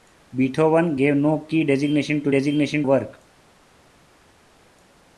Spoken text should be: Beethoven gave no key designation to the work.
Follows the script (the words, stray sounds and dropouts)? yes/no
no